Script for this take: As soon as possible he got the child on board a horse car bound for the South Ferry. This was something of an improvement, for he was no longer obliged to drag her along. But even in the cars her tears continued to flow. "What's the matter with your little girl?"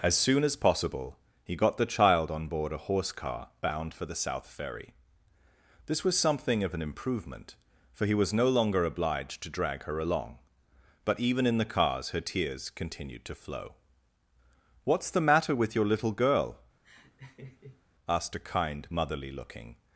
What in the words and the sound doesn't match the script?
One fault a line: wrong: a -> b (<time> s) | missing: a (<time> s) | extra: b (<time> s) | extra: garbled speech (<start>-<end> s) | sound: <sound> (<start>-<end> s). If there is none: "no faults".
sound: laugh (16.8-17.8 s)
extra: asked a kind motherly looking (18.1 s)